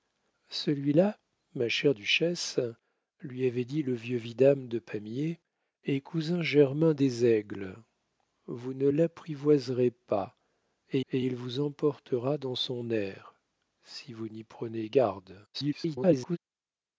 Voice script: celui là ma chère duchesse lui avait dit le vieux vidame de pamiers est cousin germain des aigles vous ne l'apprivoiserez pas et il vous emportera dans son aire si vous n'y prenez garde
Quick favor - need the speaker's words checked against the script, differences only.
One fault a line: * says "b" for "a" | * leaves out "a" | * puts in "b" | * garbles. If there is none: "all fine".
* puts in "et"
* garbles